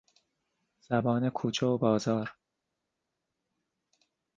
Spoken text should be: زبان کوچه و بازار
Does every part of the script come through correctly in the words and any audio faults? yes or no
yes